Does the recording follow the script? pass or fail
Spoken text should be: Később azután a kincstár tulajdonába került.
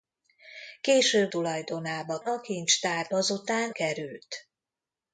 fail